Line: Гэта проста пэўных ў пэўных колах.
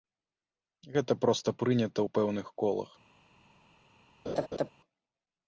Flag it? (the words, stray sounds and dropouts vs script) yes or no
yes